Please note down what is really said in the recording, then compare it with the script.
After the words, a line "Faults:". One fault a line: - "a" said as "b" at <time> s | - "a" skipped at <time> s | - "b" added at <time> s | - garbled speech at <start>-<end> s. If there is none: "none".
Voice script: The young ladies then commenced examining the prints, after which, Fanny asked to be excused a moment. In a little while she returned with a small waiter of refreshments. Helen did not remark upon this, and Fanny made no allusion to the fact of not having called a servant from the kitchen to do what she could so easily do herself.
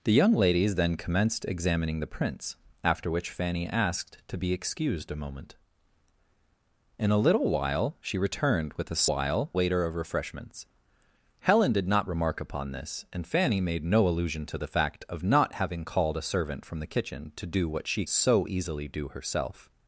The young ladies then commenced examining the prints, after which, Fanny asked to be excused a moment. In a little while she returned with a while waiter of refreshments. Helen did not remark upon this, and Fanny made no allusion to the fact of not having called a servant from the kitchen to do what she so easily do herself.
Faults:
- "small" said as "while" at 9.1 s
- "could" skipped at 18.0 s